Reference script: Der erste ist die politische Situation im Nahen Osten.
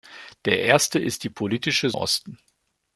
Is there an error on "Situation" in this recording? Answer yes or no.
yes